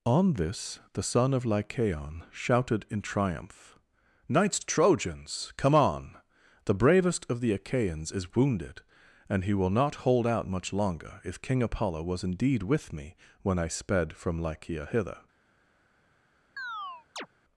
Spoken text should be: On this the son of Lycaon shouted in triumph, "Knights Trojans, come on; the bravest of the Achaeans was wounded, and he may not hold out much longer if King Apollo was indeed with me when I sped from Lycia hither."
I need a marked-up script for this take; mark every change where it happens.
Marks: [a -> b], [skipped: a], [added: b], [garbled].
On this the son of Lycaon shouted in triumph, "Knights Trojans, come on; the bravest of the Achaeans [was -> is] wounded, and he [may -> will] not hold out much longer if King Apollo was indeed with me when I sped from Lycia hither."